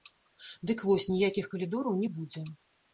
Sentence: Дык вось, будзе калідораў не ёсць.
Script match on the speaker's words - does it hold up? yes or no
no